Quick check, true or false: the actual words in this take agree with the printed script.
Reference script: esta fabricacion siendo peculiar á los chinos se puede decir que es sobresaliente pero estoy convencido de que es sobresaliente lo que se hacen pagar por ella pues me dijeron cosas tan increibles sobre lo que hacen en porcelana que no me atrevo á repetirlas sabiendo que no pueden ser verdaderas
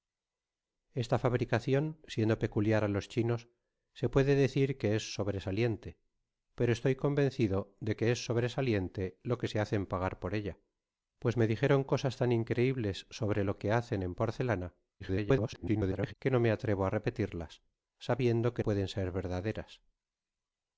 false